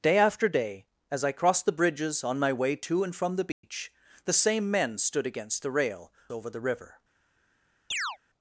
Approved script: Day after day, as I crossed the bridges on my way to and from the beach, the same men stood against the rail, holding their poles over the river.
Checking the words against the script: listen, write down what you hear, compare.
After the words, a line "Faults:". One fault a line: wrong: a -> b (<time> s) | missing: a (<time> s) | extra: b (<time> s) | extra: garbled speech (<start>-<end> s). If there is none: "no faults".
Day after day, as I crossed the bridges on my way to and from the beach, the same men stood against the rail, over the river.
Faults:
missing: holding their poles (6.1 s)